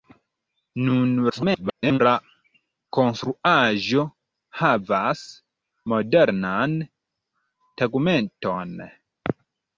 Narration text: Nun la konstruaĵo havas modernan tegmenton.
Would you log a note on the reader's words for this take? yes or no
yes